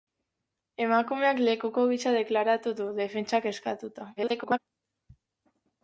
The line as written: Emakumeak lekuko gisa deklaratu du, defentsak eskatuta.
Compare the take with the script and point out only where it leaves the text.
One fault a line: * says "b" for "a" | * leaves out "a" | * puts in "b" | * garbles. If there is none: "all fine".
* garbles